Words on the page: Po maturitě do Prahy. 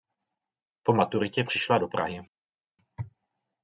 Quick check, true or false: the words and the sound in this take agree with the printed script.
false